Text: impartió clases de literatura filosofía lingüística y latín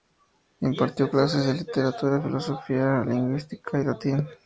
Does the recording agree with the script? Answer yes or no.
yes